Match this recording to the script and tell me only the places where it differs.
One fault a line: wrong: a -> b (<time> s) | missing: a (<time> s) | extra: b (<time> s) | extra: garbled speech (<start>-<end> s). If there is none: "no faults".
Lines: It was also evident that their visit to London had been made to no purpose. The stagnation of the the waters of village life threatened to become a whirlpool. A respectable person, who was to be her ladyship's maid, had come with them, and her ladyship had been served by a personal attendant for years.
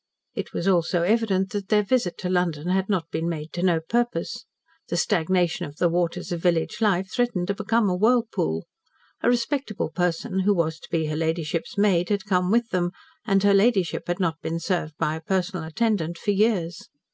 extra: not (2.9 s)
missing: the (5.9 s)
extra: not (14.2 s)